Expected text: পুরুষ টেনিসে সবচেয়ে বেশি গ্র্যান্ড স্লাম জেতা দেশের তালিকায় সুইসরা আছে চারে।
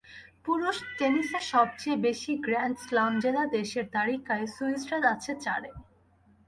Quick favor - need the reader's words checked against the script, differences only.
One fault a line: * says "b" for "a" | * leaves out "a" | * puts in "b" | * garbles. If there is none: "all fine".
all fine